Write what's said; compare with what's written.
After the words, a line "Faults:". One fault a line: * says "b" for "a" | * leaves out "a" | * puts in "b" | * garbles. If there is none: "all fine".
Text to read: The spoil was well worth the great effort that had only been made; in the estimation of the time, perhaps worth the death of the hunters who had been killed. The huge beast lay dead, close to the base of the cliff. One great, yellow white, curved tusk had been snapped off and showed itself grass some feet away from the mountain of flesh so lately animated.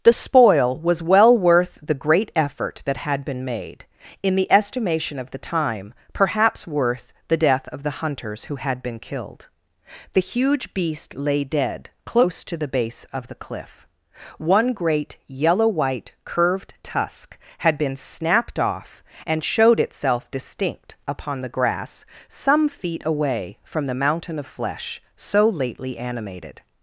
The spoil was well worth the great effort that had been made; in the estimation of the time, perhaps worth the death of the hunters who had been killed. The huge beast lay dead, close to the base of the cliff. One great, yellow white, curved tusk had been snapped off and showed itself distinct upon the grass some feet away from the mountain of flesh so lately animated.
Faults:
* leaves out "only"
* puts in "distinct upon the"